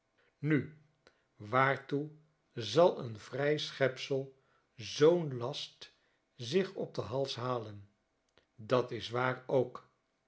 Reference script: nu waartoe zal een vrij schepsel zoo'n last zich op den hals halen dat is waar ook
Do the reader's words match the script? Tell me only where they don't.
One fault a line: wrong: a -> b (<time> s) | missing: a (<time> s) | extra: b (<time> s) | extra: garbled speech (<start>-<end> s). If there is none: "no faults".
no faults